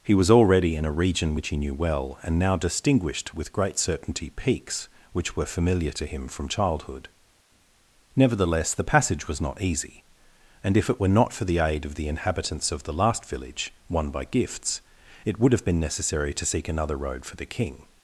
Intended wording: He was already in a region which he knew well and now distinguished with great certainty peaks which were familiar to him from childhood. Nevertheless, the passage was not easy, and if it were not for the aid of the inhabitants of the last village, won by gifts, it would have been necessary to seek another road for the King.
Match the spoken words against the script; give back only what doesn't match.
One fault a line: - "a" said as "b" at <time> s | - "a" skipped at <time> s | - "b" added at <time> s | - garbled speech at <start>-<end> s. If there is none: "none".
none